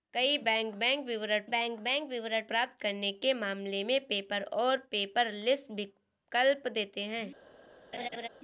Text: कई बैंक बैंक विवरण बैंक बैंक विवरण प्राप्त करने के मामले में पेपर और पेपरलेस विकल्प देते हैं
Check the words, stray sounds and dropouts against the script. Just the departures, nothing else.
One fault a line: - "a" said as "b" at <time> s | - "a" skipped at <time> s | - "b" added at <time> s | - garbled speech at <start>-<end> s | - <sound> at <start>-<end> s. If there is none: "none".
- laugh at 7.9-8.3 s